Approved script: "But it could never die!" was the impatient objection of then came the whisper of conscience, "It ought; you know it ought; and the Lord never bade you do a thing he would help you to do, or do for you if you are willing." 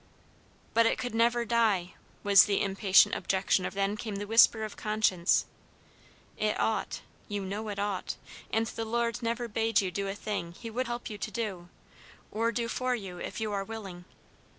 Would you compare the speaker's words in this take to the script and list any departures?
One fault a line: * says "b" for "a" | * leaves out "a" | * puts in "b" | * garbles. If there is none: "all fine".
all fine